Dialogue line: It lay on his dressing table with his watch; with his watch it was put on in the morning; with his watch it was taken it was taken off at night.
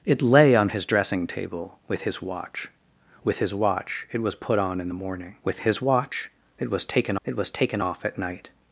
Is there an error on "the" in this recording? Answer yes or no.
no